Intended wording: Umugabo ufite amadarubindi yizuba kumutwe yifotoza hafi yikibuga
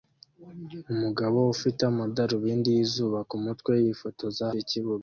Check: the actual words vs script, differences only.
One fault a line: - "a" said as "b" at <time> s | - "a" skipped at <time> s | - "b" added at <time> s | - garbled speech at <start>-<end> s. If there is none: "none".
- "hafi" skipped at 4.5 s